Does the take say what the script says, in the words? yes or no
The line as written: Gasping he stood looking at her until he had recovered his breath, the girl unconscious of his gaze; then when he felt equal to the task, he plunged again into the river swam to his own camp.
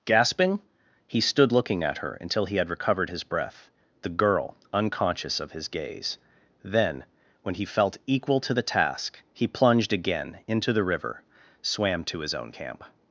yes